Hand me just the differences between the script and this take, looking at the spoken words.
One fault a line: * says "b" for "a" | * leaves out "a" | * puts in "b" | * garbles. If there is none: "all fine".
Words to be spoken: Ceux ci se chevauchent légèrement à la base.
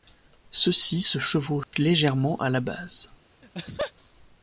all fine